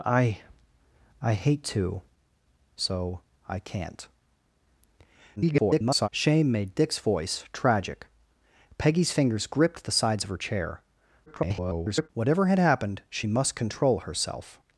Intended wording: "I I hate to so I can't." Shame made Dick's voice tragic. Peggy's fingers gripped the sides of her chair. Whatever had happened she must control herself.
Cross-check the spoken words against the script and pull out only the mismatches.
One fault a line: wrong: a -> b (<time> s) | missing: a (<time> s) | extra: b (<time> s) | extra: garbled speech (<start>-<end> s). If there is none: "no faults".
extra: garbled speech (5.4-6.1 s)
extra: garbled speech (11.3-12.1 s)